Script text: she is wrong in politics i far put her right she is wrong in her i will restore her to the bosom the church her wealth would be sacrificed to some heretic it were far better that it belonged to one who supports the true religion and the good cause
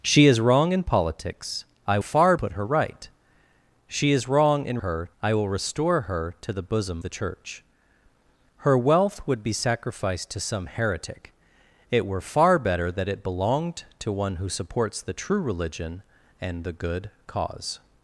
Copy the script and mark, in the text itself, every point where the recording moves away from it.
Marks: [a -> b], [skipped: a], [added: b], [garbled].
she is wrong in politics i far put her right she is wrong in her i will restore her to the bosom the church her wealth would be sacrificed to some heretic it were far better that it belonged to one who supports the true religion and the good cause